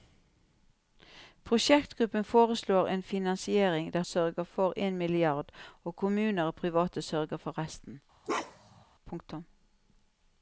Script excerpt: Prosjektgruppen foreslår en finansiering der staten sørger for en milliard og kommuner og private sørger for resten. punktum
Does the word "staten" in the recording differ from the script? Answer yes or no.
yes